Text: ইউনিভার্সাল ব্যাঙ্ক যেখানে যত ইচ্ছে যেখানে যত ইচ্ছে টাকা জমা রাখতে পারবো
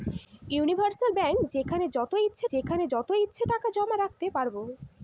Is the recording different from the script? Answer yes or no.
no